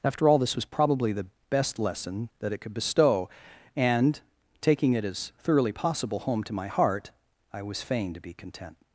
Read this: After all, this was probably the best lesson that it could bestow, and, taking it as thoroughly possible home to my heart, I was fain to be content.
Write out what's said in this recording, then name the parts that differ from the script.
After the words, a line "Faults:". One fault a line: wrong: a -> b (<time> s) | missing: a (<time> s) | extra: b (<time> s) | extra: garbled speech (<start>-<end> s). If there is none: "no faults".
After all, this was probably the best lesson that it could bestow, and, taking it as thoroughly possible home to my heart, I was fain to be content.
Faults:
no faults